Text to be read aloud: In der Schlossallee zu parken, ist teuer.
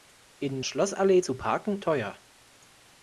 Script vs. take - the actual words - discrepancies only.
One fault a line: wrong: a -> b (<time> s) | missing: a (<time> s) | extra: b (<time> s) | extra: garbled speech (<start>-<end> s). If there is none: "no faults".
missing: der (0.6 s)
missing: ist (1.8 s)